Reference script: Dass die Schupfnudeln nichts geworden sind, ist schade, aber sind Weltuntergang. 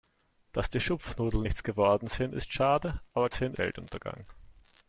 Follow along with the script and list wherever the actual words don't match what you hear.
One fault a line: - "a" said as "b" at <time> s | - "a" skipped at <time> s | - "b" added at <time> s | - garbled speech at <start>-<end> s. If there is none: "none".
none